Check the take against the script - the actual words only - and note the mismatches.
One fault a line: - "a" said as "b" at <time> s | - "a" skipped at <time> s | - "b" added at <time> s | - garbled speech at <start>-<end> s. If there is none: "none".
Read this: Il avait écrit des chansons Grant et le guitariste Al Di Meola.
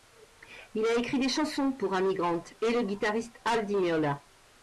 - "avait" said as "a" at 0.8 s
- "pour Amy" added at 1.7 s